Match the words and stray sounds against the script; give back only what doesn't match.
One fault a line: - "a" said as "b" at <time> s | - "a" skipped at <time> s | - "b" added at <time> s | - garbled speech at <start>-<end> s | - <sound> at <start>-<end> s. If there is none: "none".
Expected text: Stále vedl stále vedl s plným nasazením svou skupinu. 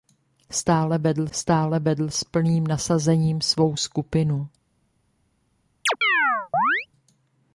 - chirp at 5.9-6.9 s